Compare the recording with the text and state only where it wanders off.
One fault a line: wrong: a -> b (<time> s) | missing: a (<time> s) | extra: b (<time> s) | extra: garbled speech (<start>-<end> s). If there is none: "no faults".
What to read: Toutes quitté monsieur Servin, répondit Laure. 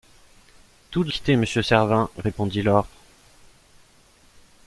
no faults